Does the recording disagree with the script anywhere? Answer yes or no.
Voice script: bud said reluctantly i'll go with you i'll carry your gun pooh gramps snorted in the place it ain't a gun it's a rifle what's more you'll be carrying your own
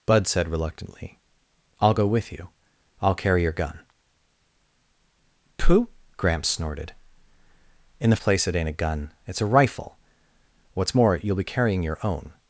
no